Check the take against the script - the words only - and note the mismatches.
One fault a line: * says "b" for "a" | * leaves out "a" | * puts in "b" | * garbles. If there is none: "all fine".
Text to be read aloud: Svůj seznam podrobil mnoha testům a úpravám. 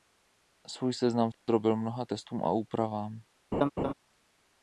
all fine